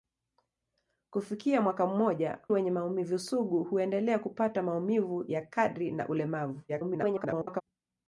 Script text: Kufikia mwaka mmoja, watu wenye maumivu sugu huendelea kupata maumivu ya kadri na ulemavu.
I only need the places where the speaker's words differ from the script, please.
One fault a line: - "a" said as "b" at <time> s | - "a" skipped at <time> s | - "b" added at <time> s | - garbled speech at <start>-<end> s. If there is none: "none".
- "watu" skipped at 2.4 s
- garbled speech at 6.7-7.6 s